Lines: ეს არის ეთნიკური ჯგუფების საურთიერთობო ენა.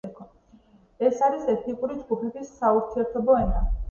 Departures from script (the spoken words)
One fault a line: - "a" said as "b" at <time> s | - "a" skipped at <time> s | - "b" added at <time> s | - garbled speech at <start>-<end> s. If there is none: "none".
none